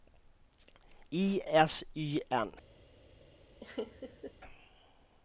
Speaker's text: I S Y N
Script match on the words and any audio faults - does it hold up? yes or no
no